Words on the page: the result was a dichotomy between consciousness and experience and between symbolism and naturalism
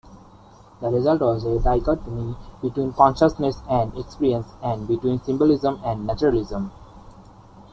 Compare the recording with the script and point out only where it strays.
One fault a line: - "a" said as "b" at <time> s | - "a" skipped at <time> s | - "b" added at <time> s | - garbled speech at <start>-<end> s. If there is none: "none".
none